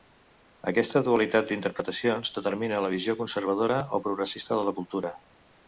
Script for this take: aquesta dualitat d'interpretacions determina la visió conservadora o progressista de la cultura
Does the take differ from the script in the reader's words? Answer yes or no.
no